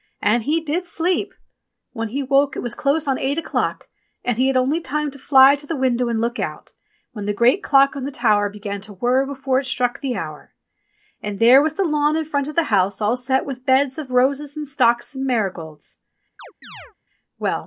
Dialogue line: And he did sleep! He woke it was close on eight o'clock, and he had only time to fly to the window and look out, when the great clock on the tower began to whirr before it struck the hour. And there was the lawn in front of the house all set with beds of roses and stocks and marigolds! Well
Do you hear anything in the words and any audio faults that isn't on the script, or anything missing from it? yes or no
yes